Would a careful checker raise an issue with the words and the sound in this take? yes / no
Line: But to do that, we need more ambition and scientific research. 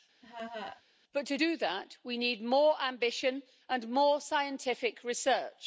yes